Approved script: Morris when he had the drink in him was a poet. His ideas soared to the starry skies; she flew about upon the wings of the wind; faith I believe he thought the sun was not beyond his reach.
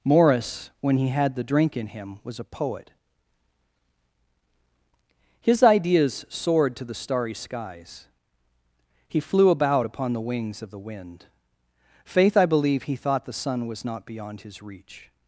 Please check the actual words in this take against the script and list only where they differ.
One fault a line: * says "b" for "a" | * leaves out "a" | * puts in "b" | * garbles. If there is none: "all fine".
* says "he" for "she"